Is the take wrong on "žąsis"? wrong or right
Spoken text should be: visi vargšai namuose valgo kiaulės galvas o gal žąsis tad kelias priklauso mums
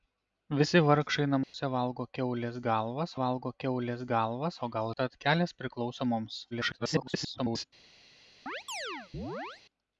wrong